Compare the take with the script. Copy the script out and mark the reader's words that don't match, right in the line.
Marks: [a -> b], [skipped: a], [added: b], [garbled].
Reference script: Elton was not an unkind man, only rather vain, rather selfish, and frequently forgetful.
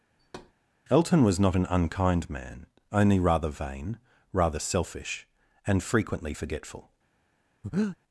Elton was not an unkind man, only rather vain, rather selfish, and frequently forgetful.